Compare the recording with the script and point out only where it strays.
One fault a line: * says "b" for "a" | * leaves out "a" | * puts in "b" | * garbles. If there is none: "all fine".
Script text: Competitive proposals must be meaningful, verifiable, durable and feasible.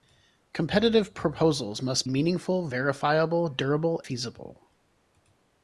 * leaves out "be"
* leaves out "and"